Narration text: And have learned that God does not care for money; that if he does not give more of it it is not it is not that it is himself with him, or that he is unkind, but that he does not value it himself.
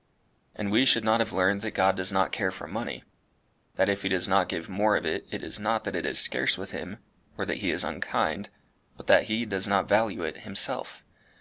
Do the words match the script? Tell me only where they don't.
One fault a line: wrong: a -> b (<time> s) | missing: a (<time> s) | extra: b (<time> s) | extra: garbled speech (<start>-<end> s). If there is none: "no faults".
extra: we should not (0.7 s)
missing: it is not (5.8 s)
wrong: himself -> scarce (6.2 s)